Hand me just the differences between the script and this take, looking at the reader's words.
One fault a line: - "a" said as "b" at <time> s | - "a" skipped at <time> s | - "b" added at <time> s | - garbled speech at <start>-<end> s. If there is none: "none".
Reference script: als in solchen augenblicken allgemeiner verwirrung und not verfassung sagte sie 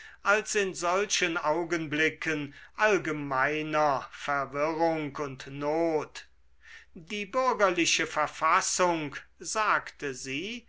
- "die bürgerliche" added at 6.9 s